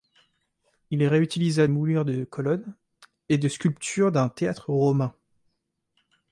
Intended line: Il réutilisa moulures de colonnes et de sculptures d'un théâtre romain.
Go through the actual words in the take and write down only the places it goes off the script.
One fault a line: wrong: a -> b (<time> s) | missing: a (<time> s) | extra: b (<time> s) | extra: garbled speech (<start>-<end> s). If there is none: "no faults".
no faults